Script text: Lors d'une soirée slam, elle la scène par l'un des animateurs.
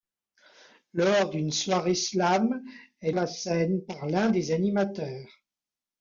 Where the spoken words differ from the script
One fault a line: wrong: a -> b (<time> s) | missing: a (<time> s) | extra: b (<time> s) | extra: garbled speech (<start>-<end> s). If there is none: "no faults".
no faults